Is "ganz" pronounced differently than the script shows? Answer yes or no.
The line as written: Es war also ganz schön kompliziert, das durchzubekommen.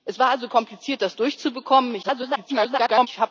yes